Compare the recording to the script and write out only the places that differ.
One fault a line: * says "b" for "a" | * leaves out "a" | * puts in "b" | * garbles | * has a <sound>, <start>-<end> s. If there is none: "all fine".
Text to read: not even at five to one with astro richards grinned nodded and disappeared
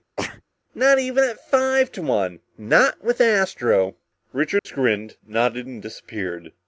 * has a sneeze, 0.2-0.4 s
* puts in "not"
* has a dropout, 4.6-4.7 s